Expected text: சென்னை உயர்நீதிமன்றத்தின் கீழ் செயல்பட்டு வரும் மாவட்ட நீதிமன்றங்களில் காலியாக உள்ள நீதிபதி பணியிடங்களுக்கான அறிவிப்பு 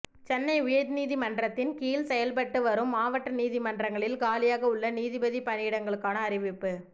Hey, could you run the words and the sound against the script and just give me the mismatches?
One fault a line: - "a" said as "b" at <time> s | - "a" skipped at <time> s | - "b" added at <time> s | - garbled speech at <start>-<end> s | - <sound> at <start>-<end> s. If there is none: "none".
none